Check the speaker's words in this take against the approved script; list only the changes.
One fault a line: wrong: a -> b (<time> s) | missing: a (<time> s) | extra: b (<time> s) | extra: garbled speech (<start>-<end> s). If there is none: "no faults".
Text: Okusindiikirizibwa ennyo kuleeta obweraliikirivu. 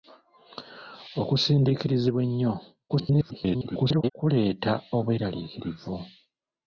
extra: garbled speech (2.9-4.1 s)